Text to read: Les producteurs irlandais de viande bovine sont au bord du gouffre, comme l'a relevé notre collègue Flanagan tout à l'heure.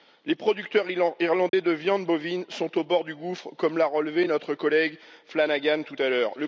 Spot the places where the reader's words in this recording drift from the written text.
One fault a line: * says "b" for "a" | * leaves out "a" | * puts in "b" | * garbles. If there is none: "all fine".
all fine